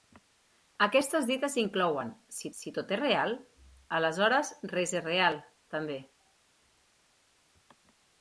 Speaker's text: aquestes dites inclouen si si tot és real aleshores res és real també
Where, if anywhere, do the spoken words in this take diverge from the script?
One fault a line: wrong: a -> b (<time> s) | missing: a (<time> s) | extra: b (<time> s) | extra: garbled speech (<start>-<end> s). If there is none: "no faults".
no faults